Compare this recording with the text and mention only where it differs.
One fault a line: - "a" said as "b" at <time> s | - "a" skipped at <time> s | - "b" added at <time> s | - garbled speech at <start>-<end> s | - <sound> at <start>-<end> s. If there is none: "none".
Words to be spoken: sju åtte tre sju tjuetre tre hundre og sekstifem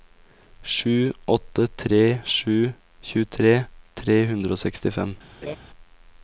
- laugh at 5.4-5.6 s